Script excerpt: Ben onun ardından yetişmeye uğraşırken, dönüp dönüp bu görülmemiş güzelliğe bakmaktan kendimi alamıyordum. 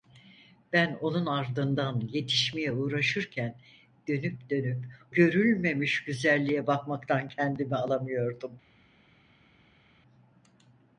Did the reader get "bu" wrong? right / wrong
wrong